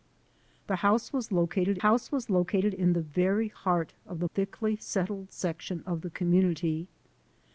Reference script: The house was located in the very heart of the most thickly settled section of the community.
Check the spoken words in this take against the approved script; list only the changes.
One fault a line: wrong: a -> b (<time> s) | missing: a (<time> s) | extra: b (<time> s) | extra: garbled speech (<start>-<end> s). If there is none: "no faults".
extra: house was located (1.8 s)
missing: most (4.3 s)